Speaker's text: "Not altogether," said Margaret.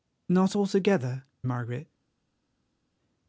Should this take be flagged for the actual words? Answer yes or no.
yes